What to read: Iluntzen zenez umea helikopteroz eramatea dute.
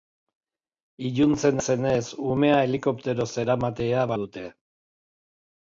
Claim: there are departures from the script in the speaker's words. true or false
false